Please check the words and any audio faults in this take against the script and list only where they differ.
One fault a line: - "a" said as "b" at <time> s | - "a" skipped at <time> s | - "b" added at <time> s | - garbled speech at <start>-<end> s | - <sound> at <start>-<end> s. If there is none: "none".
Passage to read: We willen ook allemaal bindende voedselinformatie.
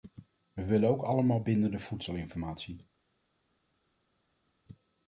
none